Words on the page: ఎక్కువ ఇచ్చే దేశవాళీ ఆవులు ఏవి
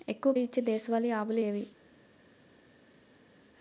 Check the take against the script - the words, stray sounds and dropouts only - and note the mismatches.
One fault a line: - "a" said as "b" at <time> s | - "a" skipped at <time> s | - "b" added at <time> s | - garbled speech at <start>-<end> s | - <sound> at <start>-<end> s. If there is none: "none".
none